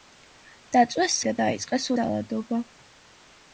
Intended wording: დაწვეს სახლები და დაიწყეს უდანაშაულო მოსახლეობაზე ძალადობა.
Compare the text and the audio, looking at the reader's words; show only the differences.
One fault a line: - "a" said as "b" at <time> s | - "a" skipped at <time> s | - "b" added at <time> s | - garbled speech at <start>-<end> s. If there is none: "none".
- "სახლები" skipped at 1.2 s
- "უდანაშაულო მოსახლეობაზე" skipped at 1.9 s